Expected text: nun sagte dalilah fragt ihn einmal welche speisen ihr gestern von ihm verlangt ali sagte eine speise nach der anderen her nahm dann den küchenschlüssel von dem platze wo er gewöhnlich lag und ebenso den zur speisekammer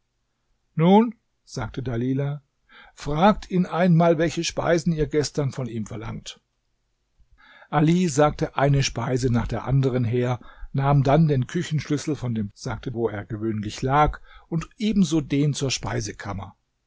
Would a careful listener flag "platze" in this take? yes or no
yes